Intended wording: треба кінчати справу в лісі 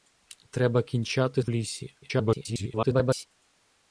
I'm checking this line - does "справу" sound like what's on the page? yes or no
no